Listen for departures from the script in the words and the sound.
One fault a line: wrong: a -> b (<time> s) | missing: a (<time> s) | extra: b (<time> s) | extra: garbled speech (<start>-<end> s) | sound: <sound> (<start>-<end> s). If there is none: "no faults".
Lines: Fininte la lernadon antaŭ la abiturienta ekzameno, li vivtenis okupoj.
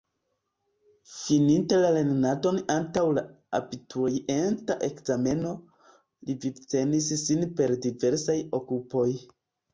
extra: sin per diversaj (7.3 s)